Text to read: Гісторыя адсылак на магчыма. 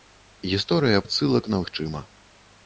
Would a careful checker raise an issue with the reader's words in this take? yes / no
no